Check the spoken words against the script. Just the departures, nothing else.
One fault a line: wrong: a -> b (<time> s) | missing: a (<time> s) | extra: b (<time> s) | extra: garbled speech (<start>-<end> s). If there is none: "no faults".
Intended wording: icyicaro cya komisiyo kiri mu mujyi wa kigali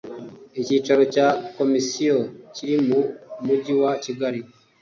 no faults